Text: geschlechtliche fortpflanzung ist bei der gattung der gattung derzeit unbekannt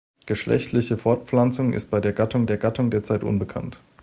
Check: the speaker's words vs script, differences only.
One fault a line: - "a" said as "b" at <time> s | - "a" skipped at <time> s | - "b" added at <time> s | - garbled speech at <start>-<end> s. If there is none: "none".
none